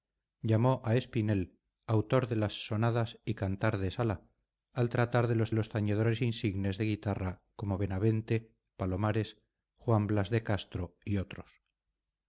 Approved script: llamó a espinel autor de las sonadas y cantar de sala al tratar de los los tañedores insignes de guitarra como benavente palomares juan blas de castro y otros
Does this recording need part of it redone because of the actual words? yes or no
no